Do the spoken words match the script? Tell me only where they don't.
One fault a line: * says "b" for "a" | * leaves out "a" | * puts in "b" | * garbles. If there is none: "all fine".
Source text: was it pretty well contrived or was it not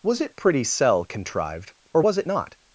* says "cell" for "well"